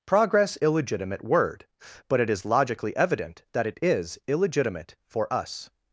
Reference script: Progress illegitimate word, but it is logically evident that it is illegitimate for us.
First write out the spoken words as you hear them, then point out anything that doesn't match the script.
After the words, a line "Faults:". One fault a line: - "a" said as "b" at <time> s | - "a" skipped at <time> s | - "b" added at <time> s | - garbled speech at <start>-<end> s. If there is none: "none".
Progress illegitimate word, but it is logically evident that it is illegitimate for us.
Faults:
none